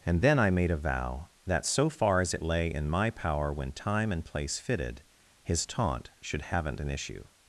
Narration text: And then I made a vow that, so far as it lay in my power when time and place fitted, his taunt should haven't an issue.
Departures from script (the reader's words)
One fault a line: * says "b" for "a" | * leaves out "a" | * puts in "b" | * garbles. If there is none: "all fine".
all fine